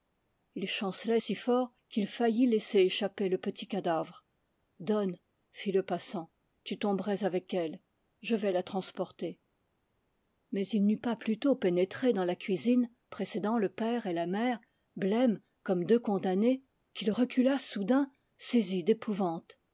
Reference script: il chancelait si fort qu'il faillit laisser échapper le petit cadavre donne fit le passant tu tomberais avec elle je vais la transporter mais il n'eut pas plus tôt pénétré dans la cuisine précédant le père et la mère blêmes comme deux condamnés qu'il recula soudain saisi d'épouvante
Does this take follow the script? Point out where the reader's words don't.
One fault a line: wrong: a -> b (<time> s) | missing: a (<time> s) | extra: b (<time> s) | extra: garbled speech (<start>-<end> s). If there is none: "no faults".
no faults